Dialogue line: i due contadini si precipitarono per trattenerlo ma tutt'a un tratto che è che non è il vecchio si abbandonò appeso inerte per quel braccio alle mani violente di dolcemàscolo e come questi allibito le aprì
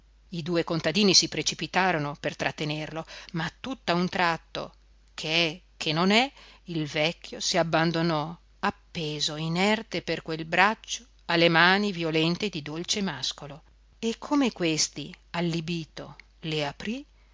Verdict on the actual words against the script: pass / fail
pass